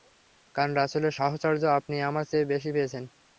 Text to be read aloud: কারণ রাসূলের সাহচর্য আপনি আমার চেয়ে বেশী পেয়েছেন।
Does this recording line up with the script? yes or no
yes